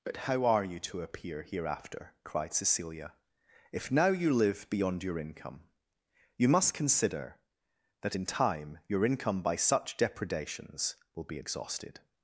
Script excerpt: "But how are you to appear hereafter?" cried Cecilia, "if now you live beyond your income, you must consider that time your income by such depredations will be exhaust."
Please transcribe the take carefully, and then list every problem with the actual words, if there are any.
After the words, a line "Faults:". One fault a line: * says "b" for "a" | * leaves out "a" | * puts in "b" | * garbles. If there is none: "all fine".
"But how are you to appear hereafter?" cried Cecilia, "if now you live beyond your income, you must consider that in time your income by such depredations will be exhausted."
Faults:
* puts in "in"
* says "exhausted" for "exhaust"